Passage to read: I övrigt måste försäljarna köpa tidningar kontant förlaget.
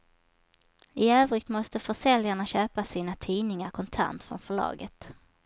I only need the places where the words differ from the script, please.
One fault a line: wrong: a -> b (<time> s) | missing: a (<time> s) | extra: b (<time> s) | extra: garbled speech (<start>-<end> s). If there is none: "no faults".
extra: sina (2.8 s)
extra: från (4.2 s)